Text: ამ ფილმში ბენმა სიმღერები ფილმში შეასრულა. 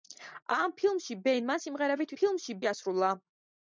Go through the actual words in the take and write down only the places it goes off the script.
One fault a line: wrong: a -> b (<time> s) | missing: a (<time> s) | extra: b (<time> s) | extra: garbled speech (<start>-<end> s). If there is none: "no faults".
no faults